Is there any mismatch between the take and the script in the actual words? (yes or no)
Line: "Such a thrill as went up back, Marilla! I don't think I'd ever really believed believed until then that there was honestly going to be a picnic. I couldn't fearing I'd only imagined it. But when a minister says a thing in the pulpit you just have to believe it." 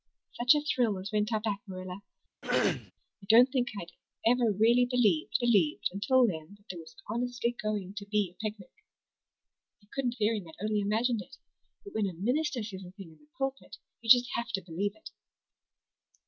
no